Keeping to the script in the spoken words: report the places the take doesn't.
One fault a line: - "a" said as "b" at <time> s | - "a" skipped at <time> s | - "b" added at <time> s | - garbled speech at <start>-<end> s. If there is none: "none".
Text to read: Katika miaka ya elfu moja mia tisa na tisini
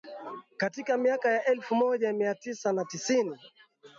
none